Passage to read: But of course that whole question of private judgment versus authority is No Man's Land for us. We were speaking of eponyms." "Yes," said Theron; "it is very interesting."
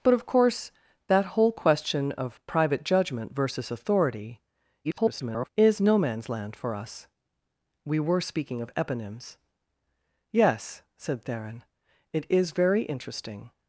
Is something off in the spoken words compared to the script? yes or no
yes